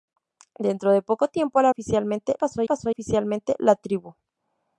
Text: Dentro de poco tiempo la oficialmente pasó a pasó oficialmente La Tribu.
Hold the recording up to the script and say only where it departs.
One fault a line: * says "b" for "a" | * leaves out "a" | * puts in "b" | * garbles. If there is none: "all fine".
all fine